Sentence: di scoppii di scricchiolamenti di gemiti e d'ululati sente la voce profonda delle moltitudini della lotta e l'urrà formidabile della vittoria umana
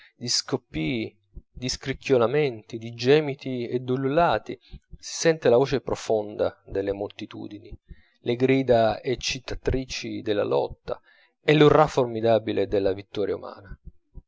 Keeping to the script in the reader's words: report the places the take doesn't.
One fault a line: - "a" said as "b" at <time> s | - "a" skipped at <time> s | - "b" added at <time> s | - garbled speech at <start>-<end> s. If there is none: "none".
- "si" added at 4.6 s
- "le grida eccitatrici" added at 8.2 s